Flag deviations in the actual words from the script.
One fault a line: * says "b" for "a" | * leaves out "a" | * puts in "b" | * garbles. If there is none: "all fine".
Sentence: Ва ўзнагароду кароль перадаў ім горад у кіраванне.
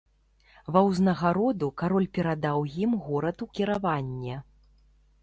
all fine